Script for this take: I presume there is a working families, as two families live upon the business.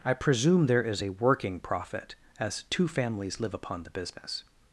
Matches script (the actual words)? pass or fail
fail